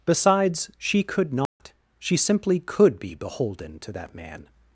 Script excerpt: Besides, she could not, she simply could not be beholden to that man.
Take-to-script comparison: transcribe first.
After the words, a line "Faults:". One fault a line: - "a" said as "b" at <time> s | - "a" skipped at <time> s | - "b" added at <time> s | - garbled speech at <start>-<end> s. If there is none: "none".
Besides, she could not, she simply could be beholden to that man.
Faults:
- "not" skipped at 3.0 s